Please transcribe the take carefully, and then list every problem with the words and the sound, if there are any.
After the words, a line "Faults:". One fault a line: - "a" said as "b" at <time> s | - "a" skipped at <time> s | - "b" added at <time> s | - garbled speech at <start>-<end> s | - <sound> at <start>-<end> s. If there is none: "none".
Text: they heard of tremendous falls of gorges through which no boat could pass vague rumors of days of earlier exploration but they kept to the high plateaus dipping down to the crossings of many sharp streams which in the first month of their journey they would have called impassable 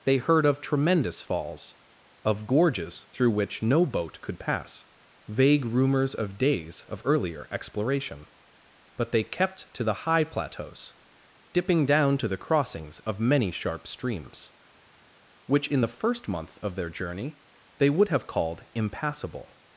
they heard of tremendous falls of gorges through which no boat could pass vague rumors of days of earlier exploration but they kept to the high plateaus dipping down to the crossings of many sharp streams which in the first month of their journey they would have called impassable
Faults:
none